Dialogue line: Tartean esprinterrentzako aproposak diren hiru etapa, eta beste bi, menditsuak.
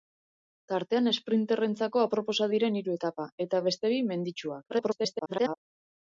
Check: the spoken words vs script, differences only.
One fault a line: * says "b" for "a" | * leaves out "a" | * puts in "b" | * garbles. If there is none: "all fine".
* garbles